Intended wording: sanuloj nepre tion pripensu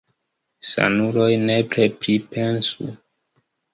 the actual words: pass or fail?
fail